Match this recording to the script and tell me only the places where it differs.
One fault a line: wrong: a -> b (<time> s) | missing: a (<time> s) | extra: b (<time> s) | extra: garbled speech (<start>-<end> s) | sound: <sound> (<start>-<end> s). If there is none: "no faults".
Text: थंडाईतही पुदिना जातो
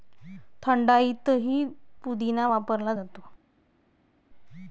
extra: वापरला (2.5 s)